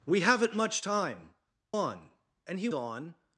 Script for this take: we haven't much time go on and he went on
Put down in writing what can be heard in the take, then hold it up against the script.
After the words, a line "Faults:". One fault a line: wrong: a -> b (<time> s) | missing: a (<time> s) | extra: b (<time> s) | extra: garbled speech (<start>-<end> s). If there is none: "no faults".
we haven't much time on and he on
Faults:
missing: go (1.3 s)
missing: went (2.7 s)